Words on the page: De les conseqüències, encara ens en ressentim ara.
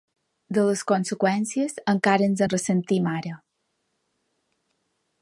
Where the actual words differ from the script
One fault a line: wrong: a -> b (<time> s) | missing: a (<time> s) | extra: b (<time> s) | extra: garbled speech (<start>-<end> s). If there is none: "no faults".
no faults